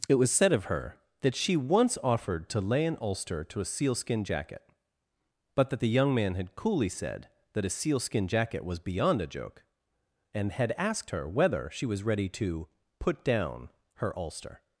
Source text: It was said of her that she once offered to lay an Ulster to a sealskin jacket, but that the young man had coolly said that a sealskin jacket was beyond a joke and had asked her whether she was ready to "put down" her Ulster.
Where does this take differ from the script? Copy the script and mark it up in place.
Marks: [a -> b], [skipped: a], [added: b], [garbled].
It was said of her that she once offered to lay an Ulster to a sealskin jacket, but that the young man had coolly said that a sealskin jacket was beyond a joke and had asked her whether she was ready to "put down" her Ulster.